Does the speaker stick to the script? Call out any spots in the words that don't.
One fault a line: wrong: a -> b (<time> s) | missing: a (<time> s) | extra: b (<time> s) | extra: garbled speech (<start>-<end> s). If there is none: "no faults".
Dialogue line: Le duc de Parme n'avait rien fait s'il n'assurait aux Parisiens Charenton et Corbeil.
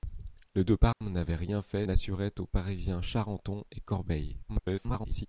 missing: duc (0.7 s)
missing: s'il (1.9 s)
extra: garbled speech (4.5-5.3 s)